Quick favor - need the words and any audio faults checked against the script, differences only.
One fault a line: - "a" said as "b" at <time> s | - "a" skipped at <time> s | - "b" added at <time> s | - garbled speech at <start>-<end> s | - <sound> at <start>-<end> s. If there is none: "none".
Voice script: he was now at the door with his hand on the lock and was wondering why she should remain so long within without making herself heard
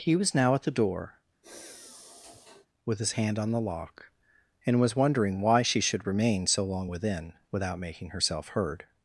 - sigh at 1.4-2.7 s